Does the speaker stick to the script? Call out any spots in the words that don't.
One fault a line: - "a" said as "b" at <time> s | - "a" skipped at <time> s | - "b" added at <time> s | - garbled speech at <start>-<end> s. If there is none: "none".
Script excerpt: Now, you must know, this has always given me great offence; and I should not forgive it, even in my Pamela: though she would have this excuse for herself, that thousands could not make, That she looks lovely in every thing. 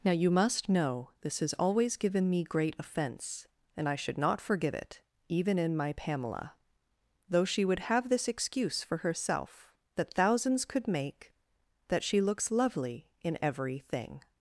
- "not" skipped at 10.9 s